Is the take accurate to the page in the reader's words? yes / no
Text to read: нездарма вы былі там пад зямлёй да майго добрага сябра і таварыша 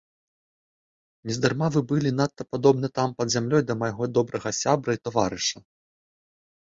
no